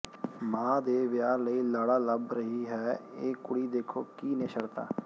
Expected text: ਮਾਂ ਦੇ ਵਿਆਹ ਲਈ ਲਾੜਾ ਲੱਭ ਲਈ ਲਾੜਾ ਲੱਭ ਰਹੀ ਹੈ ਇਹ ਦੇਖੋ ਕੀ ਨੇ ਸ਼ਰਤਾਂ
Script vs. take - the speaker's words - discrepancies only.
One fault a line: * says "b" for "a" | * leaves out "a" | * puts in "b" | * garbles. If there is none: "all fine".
* leaves out "ਲਈ ਲਾੜਾ ਲੱਭ"
* puts in "ਕੁੜੀ"